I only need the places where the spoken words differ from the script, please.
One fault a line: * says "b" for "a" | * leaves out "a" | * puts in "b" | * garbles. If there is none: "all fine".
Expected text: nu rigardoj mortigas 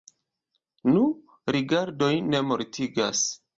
* puts in "ne"